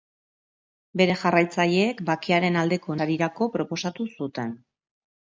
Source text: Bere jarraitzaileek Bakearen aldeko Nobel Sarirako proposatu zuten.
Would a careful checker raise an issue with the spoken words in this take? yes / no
yes